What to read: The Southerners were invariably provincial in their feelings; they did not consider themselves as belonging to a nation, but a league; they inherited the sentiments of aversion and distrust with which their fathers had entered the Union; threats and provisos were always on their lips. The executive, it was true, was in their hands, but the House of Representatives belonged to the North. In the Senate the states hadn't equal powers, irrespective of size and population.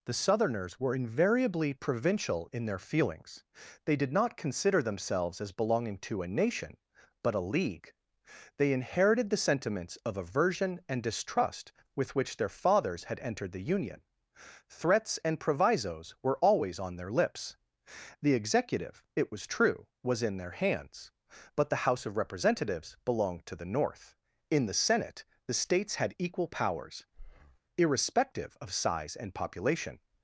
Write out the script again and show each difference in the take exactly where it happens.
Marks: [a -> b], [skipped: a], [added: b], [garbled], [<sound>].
The Southerners were invariably provincial in their feelings; they did not consider themselves as belonging to a nation, but a league; they inherited the sentiments of aversion and distrust with which their fathers had entered the Union; threats and provisos were always on their lips. The executive, it was true, was in their hands, but the House of Representatives belonged to the North. In the Senate the states [hadn't -> had] equal powers, [breath] irrespective of size and population.